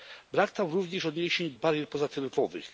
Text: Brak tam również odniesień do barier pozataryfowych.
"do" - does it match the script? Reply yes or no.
no